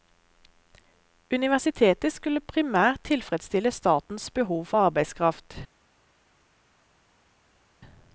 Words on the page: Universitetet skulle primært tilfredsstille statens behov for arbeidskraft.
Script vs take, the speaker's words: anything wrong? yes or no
no